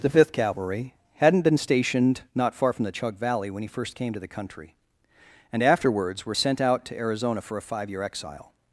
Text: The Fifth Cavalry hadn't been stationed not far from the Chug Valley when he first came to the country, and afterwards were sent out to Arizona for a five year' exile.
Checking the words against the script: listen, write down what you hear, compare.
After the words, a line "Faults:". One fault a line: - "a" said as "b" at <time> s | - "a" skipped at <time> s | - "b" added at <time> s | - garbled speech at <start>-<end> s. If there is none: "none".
The Fifth Cavalry hadn't been stationed not far from the Chug Valley when he first came to the country, and afterwards were sent out to Arizona for a five year' exile.
Faults:
none